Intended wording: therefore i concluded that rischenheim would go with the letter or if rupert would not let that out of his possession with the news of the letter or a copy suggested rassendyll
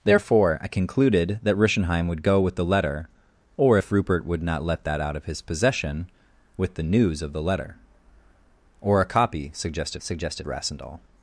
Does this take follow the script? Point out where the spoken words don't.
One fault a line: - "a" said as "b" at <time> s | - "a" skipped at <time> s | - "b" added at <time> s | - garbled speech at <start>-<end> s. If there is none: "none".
- "suggested" added at 10.0 s